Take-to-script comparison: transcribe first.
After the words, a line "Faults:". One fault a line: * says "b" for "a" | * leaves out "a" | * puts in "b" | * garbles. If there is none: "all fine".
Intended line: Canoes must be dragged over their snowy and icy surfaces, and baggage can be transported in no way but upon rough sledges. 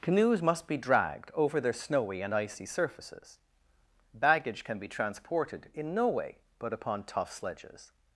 Canoes must be dragged over their snowy and icy surfaces, baggage can be transported in no way but upon tough sledges.
Faults:
* leaves out "and"
* says "tough" for "rough"